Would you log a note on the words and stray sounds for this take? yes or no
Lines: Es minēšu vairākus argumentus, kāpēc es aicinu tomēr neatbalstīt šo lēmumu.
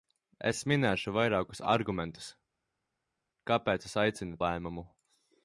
yes